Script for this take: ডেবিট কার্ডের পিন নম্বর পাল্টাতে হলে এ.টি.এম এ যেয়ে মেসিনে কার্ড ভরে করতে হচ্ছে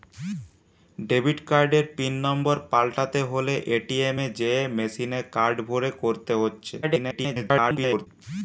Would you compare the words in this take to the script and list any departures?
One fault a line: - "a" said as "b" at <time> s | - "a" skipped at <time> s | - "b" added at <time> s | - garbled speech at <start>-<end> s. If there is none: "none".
- garbled speech at 6.8-8.1 s